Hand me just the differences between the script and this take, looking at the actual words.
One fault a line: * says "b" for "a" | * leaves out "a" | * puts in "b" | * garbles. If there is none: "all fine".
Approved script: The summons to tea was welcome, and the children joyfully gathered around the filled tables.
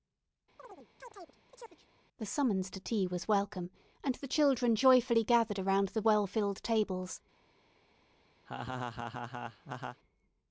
* puts in "well"